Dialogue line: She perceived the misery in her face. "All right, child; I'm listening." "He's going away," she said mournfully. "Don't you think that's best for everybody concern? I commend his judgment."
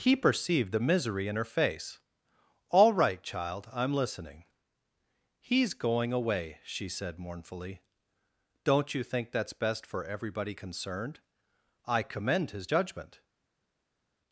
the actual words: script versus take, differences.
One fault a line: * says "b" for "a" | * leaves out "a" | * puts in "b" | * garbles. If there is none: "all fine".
* says "He" for "She"
* says "concerned" for "concern"